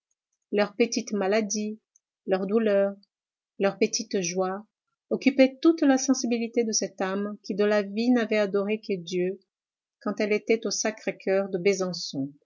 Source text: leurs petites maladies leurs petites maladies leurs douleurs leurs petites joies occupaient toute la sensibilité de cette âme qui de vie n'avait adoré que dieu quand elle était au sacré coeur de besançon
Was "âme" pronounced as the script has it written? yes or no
yes